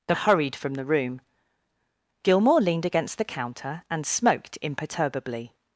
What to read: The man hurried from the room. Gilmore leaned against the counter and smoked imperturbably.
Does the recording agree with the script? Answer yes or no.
no